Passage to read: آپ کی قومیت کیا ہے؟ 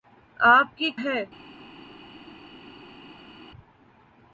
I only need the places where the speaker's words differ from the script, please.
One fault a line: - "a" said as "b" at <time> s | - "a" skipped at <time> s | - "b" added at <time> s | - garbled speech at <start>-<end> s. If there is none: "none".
- "قومیت کیا" skipped at 0.9 s